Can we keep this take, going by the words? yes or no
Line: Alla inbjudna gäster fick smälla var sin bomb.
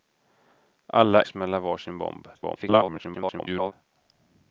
no